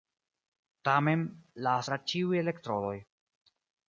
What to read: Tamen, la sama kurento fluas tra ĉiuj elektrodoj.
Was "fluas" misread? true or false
true